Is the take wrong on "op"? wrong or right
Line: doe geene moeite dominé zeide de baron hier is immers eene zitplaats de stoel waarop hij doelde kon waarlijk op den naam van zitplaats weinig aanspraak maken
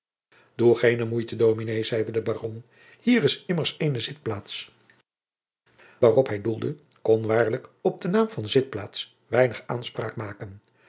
right